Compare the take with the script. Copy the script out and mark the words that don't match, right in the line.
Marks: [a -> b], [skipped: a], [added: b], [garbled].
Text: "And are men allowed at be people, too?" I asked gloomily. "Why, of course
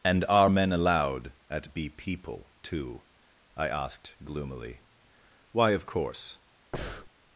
"And are men allowed at be people, too?" I asked gloomily. "Why, of course